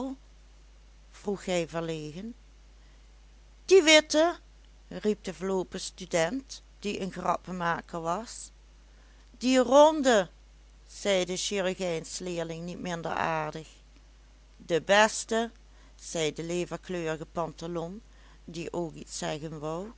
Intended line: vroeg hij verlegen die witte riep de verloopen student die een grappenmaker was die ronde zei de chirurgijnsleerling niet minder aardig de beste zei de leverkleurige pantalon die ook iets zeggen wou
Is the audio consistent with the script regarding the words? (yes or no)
yes